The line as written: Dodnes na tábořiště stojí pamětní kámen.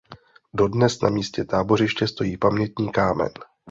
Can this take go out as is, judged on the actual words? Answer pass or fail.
fail